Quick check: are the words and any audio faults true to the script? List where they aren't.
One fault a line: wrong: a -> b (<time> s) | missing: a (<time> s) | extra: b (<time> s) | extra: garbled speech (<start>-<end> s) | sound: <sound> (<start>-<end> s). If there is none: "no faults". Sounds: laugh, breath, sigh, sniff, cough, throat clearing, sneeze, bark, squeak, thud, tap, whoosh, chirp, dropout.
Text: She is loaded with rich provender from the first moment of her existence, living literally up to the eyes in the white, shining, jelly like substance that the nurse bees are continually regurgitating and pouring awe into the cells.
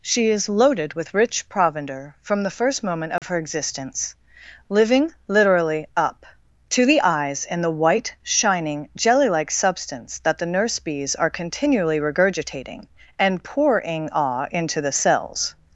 sound: dropout (3.2-3.2 s)